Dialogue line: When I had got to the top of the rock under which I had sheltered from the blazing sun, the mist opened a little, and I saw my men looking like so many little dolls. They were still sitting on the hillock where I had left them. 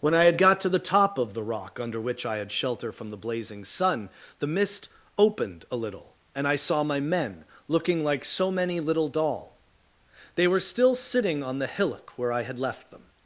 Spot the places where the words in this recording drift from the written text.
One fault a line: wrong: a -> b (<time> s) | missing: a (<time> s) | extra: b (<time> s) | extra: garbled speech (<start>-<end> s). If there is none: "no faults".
wrong: sheltered -> shelter (2.5 s)
wrong: dolls -> doll (9.1 s)